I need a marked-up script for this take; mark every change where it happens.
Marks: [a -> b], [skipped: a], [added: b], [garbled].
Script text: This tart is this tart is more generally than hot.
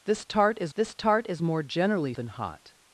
This tart is this tart is more generally than hot.